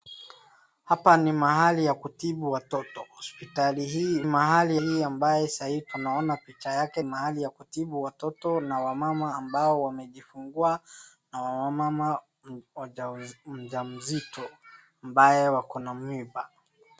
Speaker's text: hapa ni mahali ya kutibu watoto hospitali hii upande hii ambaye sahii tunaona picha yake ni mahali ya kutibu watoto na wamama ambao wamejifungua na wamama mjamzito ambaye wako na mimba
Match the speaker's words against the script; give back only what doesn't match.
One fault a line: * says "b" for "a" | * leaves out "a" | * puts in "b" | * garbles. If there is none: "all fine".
* says "mahali" for "upande"
* leaves out "ni"